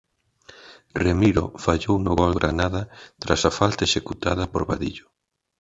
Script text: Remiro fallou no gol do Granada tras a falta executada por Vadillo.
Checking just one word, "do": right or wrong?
wrong